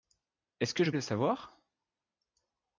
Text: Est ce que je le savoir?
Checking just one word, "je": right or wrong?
right